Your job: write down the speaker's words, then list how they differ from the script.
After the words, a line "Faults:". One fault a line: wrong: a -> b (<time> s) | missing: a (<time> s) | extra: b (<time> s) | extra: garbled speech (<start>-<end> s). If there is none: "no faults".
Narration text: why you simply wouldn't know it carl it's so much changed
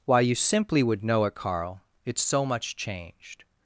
why you simply would know it carl it's so much changed
Faults:
wrong: wouldn't -> would (0.8 s)